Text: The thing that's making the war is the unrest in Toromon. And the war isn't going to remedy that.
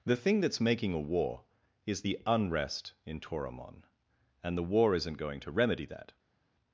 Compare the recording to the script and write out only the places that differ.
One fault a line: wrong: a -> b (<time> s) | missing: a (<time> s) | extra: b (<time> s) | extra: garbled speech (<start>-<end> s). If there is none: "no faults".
wrong: the -> a (0.9 s)